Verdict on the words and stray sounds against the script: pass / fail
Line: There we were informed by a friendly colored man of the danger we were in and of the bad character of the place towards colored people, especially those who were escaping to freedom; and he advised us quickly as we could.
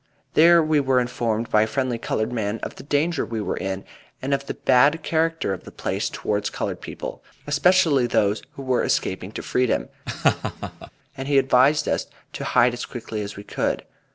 fail